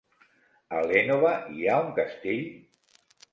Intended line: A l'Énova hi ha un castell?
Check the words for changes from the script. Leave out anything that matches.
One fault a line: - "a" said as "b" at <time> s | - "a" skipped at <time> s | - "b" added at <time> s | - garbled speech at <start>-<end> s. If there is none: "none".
none